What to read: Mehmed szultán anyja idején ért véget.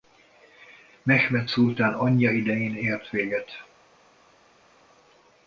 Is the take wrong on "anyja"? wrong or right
right